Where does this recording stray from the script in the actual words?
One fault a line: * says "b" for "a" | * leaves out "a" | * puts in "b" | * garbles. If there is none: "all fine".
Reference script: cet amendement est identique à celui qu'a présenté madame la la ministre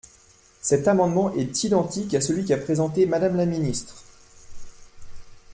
* leaves out "la"